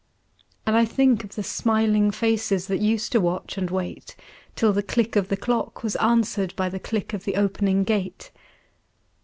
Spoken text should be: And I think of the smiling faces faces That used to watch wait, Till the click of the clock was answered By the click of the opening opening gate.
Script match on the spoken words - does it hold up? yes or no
no